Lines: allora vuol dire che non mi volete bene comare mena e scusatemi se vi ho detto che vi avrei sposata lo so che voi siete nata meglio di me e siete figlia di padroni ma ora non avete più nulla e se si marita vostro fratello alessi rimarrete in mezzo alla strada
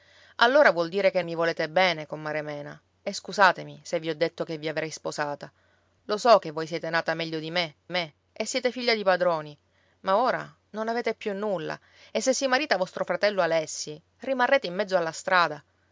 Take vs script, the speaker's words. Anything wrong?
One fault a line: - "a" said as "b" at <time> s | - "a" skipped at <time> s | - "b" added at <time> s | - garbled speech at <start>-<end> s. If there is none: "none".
- "non" skipped at 1.2 s
- "me" added at 7.9 s